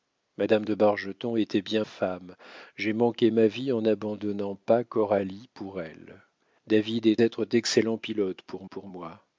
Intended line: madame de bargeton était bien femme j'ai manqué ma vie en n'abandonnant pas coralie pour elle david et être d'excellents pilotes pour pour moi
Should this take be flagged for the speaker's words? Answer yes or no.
no